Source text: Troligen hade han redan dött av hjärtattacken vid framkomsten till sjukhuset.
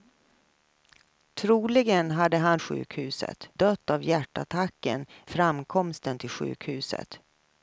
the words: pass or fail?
fail